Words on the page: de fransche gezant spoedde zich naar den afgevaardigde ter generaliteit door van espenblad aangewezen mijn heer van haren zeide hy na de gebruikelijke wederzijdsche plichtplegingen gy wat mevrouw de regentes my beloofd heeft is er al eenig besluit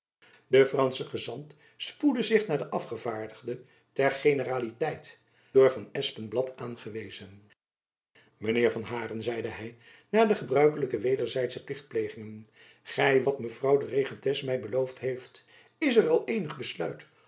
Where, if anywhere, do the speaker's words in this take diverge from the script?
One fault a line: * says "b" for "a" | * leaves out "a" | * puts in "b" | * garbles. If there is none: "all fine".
all fine